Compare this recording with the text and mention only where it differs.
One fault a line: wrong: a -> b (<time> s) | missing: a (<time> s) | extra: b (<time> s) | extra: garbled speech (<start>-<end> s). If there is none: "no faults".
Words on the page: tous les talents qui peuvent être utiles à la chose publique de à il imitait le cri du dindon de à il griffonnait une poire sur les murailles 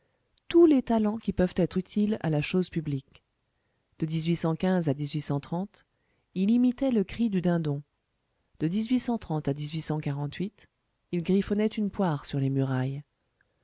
no faults